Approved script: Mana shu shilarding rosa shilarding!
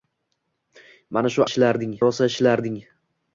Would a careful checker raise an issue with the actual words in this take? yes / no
no